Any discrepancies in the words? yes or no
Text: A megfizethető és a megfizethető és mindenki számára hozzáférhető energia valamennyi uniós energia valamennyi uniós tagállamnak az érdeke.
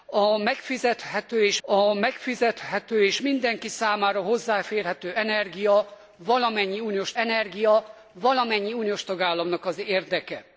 no